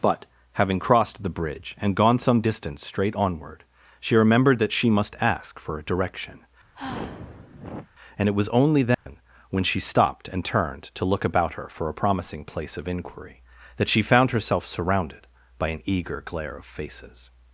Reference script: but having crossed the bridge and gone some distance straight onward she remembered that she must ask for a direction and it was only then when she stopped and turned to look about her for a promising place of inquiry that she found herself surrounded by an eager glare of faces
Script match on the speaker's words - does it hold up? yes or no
yes